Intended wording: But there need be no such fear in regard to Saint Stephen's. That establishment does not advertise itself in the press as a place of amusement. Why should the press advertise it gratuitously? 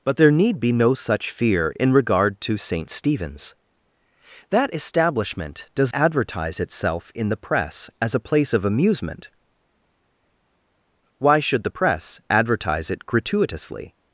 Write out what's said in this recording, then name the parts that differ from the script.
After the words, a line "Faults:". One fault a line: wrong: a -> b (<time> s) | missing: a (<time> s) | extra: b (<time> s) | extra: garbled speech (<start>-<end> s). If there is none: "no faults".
But there need be no such fear in regard to Saint Stephen's. That establishment does advertise itself in the press as a place of amusement. Why should the press advertise it gratuitously?
Faults:
missing: not (5.9 s)